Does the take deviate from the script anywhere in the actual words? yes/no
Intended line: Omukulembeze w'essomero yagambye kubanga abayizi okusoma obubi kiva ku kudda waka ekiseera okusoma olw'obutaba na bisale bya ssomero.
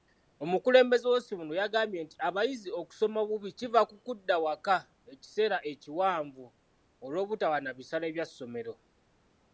yes